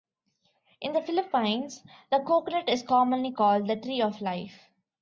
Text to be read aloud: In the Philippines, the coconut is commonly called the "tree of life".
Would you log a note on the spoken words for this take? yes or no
no